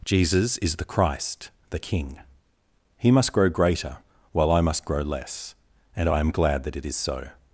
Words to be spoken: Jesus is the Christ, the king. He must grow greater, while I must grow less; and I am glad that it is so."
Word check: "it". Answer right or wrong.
right